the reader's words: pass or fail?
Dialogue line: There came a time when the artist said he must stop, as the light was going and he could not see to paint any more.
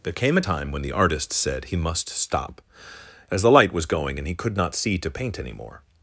pass